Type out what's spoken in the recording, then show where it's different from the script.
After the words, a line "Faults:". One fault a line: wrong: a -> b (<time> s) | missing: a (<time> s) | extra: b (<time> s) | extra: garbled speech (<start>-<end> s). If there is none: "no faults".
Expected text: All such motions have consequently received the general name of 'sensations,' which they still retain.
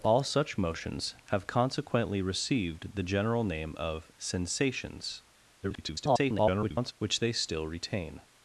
All such motions have consequently received the general name of 'sensations,' [garbled] which they still retain.
Faults:
extra: garbled speech (5.6-6.9 s)